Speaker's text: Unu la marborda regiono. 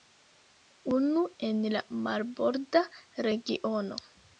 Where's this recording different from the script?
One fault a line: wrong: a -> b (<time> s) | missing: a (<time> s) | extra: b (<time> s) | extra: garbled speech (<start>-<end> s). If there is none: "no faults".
extra: en (1.5 s)